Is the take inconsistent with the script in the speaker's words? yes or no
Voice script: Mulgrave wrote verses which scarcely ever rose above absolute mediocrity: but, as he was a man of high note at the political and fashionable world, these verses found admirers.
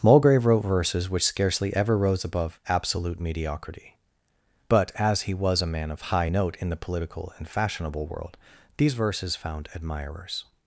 yes